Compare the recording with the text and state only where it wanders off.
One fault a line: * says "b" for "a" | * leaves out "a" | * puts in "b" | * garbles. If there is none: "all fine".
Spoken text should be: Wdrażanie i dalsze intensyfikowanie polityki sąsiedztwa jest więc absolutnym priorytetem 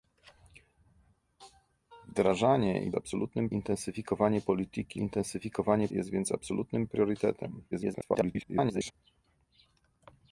* says "absolutnym" for "dalsze"
* says "intensyfikowanie" for "sąsiedztwa"
* garbles